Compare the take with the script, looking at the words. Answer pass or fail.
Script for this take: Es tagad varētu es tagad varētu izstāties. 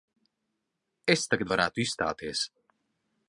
fail